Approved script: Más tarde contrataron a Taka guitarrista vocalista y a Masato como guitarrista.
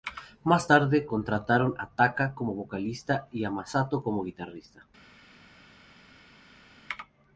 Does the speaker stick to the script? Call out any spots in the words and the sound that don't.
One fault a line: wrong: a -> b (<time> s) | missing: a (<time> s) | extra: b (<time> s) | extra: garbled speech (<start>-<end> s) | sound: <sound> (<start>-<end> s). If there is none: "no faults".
wrong: guitarrista -> como (2.3 s)